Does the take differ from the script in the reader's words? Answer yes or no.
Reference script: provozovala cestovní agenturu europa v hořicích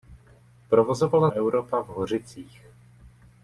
yes